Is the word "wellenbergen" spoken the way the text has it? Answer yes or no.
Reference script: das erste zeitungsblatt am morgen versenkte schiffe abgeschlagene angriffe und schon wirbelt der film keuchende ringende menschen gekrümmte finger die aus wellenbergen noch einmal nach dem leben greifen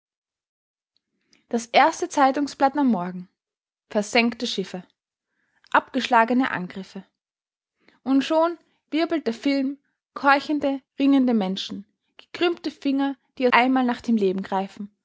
no